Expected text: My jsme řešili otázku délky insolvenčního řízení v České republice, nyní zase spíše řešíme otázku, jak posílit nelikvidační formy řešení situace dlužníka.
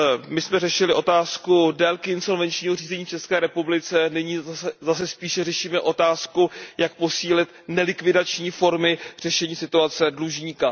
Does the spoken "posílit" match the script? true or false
true